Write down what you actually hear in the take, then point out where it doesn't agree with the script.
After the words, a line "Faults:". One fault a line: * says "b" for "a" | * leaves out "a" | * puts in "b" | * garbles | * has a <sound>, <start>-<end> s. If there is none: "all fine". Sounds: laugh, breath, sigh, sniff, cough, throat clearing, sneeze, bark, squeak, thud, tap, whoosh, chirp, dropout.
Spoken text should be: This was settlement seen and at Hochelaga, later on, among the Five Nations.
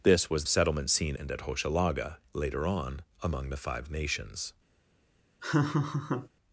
This was settlement seen and at Hochelaga, later on, among the Five Nations.
Faults:
* has a laugh, 5.4-6.3 s